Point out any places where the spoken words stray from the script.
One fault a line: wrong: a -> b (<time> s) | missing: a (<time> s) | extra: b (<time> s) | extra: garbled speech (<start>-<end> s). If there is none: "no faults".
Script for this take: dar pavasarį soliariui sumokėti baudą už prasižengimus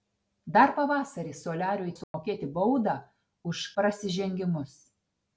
no faults